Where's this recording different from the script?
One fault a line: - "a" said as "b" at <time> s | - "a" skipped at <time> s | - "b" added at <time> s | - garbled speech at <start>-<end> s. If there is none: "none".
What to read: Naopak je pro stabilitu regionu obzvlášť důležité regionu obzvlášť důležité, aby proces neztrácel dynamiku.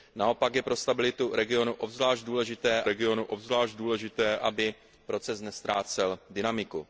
none